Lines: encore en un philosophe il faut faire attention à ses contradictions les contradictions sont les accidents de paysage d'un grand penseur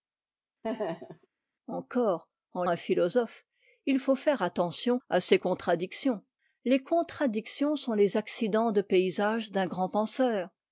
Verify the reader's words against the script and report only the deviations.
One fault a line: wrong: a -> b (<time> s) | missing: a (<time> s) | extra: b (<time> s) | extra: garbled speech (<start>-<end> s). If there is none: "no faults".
no faults